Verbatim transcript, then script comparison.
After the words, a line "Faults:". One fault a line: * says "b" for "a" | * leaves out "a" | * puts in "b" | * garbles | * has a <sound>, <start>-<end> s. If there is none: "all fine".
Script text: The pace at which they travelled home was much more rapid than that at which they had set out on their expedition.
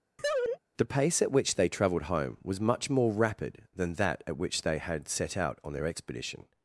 The pace at which they travelled home was much more rapid than that at which they had set out on their expedition.
Faults:
* has a laugh, 0.2-0.6 s